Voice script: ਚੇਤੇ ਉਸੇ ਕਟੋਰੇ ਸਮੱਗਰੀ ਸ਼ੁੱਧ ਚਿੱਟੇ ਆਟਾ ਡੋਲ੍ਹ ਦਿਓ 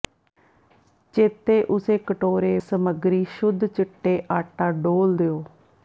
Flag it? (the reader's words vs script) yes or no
no